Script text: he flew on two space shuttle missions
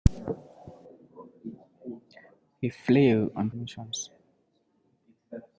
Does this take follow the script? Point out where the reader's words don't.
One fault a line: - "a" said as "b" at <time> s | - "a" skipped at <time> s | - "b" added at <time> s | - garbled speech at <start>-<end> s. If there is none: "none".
- "two space shuttle" skipped at 3.5 s